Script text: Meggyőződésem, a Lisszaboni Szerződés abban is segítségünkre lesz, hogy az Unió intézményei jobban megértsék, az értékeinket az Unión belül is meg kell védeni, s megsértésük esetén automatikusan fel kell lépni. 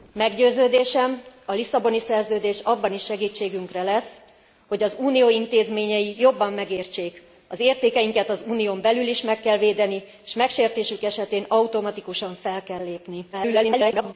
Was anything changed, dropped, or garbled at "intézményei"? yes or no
no